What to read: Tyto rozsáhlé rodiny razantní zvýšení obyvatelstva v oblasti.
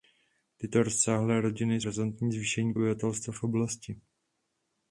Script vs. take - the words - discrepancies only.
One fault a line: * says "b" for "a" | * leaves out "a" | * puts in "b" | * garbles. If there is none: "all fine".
all fine